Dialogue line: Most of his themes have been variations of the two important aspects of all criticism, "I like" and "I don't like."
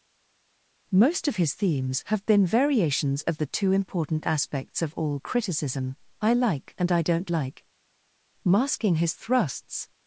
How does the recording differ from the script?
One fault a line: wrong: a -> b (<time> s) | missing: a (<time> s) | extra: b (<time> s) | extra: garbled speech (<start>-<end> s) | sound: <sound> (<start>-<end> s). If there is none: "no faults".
extra: Masking his thrusts (8.4 s)